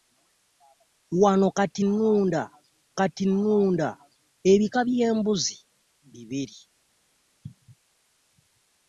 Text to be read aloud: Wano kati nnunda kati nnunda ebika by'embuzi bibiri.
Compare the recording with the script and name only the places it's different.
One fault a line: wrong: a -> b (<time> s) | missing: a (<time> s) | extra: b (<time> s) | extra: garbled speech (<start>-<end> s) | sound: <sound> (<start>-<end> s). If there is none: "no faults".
no faults